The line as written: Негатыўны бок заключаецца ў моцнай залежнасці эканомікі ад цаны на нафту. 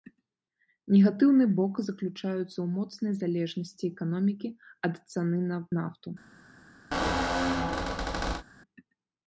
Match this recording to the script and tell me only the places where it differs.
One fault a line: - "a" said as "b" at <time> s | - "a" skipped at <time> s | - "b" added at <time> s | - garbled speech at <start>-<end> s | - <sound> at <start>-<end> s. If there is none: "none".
- squeak at 6.9-8.4 s